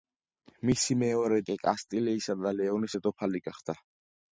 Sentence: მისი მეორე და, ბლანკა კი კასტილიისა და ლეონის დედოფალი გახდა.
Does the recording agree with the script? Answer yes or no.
no